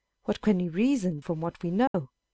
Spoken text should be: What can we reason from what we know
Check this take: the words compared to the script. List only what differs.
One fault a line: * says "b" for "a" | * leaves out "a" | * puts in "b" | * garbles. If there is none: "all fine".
all fine